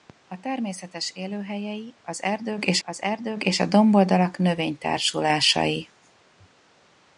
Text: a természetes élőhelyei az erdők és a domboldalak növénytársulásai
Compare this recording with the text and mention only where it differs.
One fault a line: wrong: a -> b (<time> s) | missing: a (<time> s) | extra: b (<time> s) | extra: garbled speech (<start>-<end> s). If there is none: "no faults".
extra: az erdők és (2.8 s)